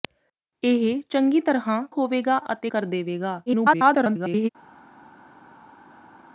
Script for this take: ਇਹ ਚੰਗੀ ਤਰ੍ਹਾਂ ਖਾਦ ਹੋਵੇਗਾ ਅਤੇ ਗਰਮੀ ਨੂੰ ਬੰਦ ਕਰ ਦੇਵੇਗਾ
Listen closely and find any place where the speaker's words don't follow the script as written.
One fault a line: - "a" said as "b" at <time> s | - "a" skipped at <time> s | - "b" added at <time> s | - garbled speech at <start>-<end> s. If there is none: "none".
- "ਖਾਦ" skipped at 1.8 s
- "ਗਰਮੀ ਨੂੰ ਬੰਦ" skipped at 2.7 s
- garbled speech at 3.5-4.5 s